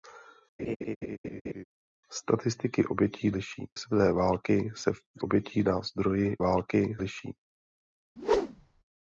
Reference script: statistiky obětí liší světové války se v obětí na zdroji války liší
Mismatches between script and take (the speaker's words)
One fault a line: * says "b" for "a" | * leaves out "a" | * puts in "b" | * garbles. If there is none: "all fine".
all fine